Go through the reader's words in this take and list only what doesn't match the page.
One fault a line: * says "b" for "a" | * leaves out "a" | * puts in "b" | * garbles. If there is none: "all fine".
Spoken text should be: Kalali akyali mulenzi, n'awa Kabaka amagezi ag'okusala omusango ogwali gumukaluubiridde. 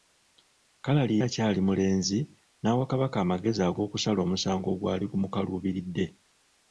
all fine